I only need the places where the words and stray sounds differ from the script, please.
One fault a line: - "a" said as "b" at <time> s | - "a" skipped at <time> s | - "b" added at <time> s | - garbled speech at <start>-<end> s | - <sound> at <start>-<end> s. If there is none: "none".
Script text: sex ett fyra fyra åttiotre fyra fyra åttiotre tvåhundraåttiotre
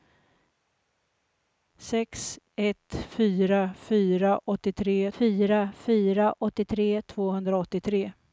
none